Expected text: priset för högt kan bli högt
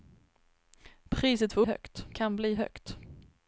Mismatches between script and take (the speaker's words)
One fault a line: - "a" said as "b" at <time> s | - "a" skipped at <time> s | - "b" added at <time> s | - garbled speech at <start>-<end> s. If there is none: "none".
none